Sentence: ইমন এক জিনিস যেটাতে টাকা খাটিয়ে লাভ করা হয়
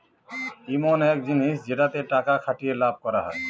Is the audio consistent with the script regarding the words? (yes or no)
yes